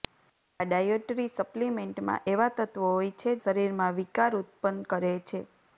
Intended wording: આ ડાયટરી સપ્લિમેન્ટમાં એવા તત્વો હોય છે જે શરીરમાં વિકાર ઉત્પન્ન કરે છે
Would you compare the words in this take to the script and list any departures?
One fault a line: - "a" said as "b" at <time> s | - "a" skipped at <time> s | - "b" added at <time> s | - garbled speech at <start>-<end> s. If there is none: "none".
- "જે" skipped at 3.4 s